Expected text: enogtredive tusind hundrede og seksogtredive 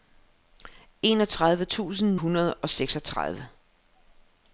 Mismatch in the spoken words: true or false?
false